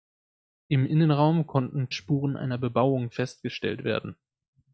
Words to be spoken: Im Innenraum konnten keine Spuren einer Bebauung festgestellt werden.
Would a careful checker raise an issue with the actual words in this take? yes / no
yes